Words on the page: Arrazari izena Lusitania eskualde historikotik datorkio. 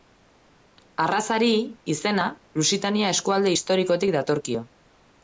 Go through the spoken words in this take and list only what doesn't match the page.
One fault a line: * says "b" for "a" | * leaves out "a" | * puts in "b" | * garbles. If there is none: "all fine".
all fine